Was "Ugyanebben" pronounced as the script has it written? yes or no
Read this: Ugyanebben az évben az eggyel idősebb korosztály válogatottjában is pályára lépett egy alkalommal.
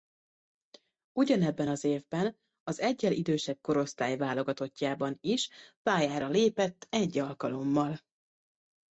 yes